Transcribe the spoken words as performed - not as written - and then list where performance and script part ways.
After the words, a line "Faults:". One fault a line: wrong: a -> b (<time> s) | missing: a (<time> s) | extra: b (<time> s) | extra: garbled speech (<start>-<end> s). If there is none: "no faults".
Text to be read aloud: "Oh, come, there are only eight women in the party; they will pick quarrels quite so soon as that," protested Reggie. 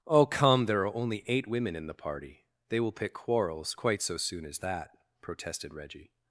"Oh, come, there are only eight women in the party; they will pick quarrels quite so soon as that," protested Reggie.
Faults:
no faults